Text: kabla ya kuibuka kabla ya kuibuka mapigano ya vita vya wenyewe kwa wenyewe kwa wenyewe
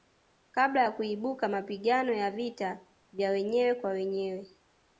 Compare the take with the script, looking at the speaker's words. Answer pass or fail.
fail